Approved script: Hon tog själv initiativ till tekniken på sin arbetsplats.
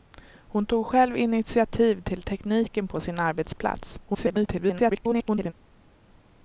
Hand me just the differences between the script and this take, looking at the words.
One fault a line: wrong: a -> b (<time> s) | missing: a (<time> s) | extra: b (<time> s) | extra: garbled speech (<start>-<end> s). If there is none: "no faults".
extra: garbled speech (4.1-5.5 s)